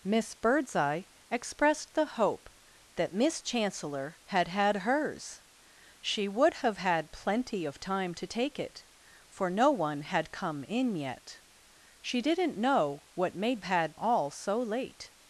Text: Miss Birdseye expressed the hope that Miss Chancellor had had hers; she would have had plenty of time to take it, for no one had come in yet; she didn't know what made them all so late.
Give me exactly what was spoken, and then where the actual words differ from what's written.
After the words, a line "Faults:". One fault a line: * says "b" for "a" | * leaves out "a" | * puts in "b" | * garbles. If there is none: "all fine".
Miss Birdseye expressed the hope that Miss Chancellor had had hers; she would have had plenty of time to take it, for no one had come in yet; she didn't know what made had all so late.
Faults:
* says "had" for "them"